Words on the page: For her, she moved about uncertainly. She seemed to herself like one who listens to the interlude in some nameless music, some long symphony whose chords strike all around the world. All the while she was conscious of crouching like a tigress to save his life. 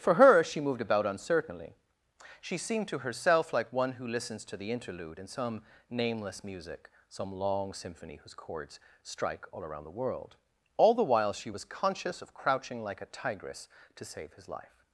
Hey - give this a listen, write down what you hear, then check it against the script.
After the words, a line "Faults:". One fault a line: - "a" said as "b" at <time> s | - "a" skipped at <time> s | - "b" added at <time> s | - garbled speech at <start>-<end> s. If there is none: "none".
For her, she moved about uncertainly. She seemed to herself like one who listens to the interlude in some nameless music, some long symphony whose chords strike all around the world. All the while she was conscious of crouching like a tigress to save his life.
Faults:
none